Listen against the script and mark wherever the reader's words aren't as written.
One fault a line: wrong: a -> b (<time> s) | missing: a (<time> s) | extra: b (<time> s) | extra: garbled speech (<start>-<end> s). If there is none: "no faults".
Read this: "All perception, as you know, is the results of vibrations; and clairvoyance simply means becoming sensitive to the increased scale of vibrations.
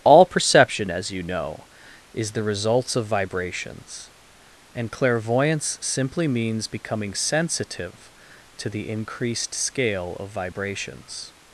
no faults